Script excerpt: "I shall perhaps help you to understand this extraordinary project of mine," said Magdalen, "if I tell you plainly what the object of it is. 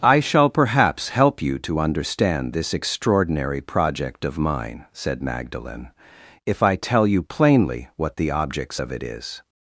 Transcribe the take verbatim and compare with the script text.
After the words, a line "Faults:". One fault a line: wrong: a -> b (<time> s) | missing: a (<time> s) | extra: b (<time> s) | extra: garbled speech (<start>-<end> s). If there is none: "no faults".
"I shall perhaps help you to understand this extraordinary project of mine," said Magdalen, "if I tell you plainly what the objects of it is.
Faults:
wrong: object -> objects (8.3 s)